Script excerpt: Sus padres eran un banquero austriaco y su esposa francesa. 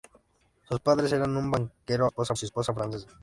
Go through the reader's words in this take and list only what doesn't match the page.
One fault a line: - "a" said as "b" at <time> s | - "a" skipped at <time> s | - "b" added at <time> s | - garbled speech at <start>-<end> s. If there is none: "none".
- "austriaco" said as "esposa" at 2.0 s